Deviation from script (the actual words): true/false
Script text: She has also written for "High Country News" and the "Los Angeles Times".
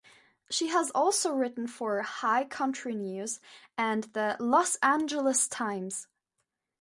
false